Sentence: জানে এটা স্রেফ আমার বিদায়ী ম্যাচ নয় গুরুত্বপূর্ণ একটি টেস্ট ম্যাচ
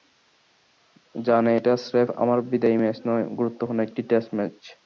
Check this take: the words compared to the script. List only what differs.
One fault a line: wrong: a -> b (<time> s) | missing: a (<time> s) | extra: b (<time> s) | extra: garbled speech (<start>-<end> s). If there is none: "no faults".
no faults